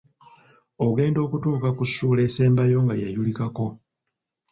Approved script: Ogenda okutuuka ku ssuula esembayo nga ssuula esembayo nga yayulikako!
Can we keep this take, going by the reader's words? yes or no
no